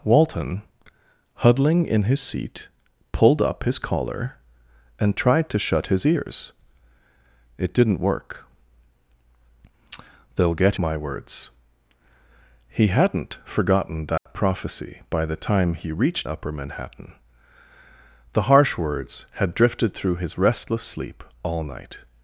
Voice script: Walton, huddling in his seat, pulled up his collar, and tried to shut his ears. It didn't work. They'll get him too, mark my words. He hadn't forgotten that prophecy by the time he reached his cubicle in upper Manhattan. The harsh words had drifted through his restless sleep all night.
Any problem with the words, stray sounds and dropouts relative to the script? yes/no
yes